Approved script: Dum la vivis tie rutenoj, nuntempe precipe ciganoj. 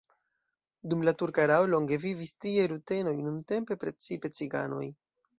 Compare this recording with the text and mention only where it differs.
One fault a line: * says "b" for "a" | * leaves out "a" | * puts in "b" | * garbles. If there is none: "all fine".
* puts in "turka erao longe"